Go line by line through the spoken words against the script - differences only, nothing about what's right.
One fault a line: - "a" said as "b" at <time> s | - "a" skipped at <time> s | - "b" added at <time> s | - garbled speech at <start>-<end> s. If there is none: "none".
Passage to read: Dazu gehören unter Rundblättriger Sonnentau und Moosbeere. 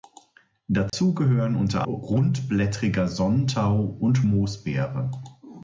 none